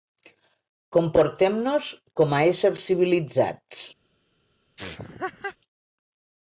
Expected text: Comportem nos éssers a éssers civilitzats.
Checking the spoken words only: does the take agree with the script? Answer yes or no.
no